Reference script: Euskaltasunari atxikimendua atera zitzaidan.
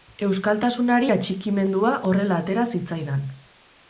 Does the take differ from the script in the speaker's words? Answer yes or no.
yes